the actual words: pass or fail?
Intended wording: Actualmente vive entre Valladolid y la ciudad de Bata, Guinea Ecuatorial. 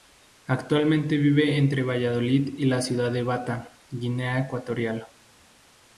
pass